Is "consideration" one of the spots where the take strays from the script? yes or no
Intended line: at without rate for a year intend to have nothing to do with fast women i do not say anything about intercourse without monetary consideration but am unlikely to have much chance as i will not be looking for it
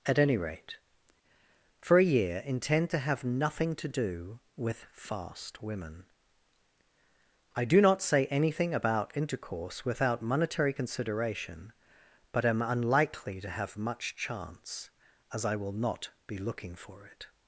no